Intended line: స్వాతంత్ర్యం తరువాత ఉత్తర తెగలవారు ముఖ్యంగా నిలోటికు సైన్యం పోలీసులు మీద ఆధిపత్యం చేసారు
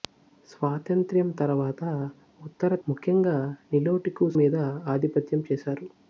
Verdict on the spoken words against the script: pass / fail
fail